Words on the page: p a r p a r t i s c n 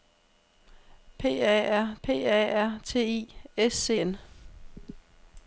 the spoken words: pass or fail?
pass